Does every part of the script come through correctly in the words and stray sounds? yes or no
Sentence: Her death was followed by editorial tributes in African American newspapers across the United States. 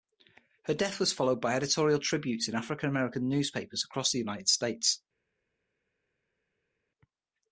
yes